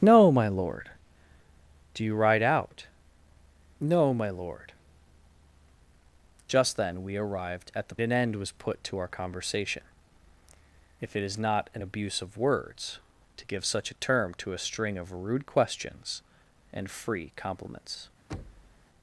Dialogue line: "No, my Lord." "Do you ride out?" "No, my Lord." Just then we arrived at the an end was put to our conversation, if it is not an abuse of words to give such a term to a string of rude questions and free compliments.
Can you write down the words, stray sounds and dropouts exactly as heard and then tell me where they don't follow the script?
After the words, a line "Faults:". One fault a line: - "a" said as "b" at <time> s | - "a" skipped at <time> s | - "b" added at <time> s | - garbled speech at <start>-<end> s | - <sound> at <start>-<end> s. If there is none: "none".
"No, my Lord." "Do you ride out?" "No, my Lord." Just then we arrived at the an end was put to our conversation, if it is not an abuse of words to give such a term to a string of rude questions and free compliments.
Faults:
- thud at 18.3-18.9 s